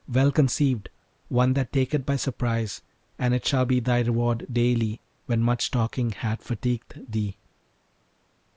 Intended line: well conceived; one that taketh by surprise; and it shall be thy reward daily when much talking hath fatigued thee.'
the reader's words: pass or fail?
pass